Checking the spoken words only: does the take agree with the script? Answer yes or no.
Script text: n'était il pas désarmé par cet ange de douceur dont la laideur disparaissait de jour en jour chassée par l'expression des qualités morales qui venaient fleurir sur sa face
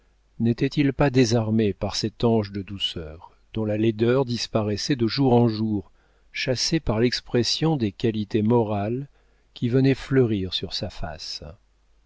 yes